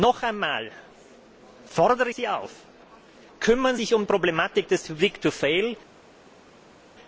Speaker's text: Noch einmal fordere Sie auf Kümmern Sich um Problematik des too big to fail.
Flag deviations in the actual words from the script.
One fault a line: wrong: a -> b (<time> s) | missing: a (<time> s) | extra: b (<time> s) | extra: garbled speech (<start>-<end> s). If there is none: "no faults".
no faults